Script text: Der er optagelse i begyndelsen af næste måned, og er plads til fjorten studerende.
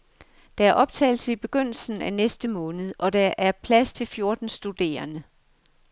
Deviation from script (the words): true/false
true